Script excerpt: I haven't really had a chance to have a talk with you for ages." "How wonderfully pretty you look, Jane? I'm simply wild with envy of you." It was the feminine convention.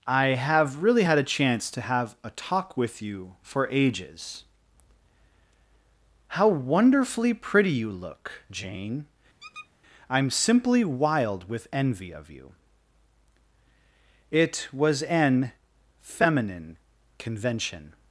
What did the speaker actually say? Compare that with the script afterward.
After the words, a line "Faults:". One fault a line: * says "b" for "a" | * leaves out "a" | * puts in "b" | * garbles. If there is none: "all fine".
I have really had a chance to have a talk with you for ages." "How wonderfully pretty you look, Jane? I'm simply wild with envy of you." It was an feminine convention.
Faults:
* says "have" for "haven't"
* says "an" for "the"